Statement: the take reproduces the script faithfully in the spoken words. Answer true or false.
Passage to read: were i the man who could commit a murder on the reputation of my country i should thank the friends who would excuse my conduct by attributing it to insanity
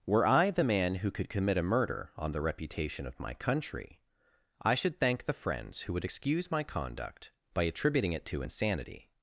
true